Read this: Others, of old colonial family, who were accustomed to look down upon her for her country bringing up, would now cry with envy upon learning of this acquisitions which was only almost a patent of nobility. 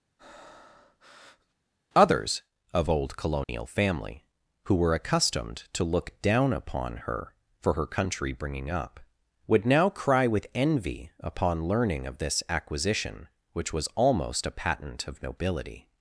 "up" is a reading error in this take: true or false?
false